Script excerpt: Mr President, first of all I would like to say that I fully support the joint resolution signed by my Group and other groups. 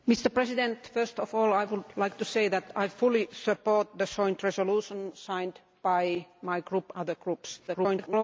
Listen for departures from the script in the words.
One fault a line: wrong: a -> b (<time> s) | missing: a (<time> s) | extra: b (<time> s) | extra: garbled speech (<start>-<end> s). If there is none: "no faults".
missing: and (6.9 s)
extra: garbled speech (7.7-8.2 s)